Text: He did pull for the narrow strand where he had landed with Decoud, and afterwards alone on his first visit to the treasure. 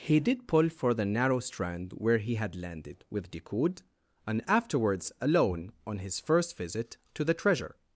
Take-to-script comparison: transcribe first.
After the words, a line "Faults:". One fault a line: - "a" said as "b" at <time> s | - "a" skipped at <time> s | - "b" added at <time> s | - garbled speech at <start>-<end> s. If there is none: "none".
He did pull for the narrow strand where he had landed with Decoud, and afterwards alone on his first visit to the treasure.
Faults:
none